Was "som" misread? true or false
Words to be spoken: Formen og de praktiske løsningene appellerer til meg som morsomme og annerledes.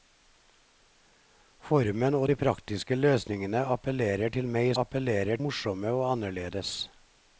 true